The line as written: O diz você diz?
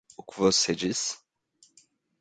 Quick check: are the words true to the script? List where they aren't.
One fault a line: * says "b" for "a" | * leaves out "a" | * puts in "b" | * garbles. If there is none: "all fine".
* says "que" for "diz"